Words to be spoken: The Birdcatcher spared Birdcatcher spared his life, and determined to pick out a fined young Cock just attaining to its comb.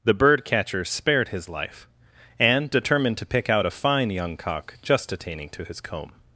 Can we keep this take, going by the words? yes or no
no